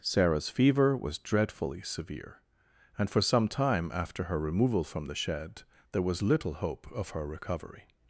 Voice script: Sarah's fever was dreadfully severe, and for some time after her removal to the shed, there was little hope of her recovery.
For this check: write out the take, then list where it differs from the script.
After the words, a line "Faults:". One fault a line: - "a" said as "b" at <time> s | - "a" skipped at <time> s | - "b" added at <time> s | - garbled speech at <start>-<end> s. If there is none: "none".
Sarah's fever was dreadfully severe, and for some time after her removal from the shed, there was little hope of her recovery.
Faults:
- "to" said as "from" at 4.8 s